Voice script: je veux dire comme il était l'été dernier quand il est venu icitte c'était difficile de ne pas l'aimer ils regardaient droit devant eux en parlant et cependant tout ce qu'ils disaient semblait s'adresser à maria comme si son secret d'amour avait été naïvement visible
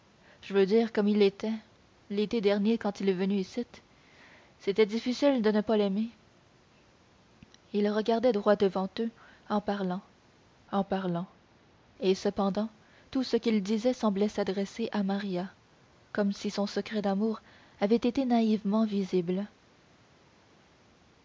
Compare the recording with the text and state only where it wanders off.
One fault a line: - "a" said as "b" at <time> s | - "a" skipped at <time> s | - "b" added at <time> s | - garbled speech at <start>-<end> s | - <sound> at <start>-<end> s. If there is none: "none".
- "en parlant" added at 10.7 s